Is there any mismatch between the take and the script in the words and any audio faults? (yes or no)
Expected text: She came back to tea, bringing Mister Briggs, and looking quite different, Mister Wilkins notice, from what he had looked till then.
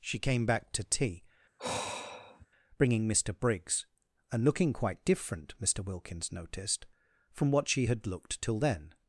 yes